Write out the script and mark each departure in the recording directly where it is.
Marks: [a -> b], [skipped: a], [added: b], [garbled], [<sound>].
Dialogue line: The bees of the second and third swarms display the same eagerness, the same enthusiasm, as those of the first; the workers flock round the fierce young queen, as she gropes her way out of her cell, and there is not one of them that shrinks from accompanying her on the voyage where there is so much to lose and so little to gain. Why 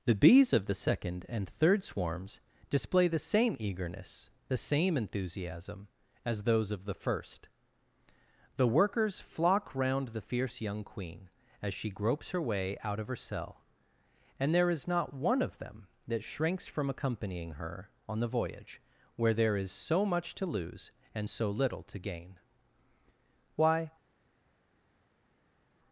The bees of the second and third swarms display the same eagerness, the same enthusiasm, as those of the first; the workers flock round the fierce young queen, as she gropes her way out of her cell, and there is not one of them that shrinks from accompanying her on the voyage where there is so much to lose and so little to gain. Why